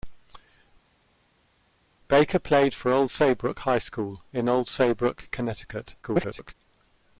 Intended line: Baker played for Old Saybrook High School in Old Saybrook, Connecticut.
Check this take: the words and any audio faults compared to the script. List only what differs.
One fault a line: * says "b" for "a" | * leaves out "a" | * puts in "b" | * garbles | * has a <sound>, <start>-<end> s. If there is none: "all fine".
* garbles